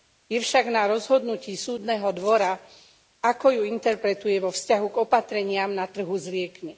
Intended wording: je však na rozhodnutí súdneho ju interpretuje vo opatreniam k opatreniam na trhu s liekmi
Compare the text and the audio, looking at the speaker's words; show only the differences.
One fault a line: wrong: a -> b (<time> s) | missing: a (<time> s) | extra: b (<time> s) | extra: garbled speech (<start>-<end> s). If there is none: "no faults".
extra: dvora ako (2.1 s)
wrong: opatreniam -> vzťahu (4.5 s)